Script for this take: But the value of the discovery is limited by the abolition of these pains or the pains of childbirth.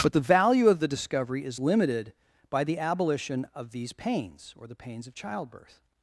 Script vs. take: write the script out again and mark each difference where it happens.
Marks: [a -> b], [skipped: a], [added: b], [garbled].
But the value of the discovery is limited by the abolition of these pains or the pains of childbirth.